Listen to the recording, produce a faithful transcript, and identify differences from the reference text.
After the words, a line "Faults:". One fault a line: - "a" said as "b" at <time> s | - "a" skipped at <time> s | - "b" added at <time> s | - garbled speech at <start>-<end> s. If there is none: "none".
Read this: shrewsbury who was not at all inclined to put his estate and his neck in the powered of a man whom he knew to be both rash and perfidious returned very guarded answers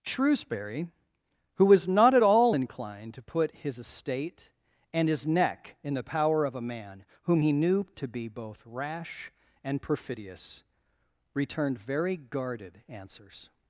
shrewsbury who was not at all inclined to put his estate and his neck in the power of a man whom he knew to be both rash and perfidious returned very guarded answers
Faults:
- "powered" said as "power" at 6.0 s